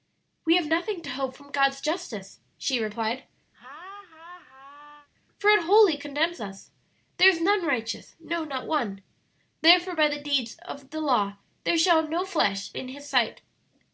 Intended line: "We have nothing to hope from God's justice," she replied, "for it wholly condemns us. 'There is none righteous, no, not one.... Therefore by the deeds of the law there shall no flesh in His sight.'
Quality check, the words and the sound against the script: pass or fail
fail